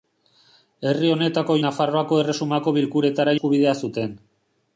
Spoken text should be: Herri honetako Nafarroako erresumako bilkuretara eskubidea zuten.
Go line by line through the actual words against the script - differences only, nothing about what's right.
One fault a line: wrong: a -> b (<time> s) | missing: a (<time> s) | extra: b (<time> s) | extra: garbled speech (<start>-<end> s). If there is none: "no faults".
no faults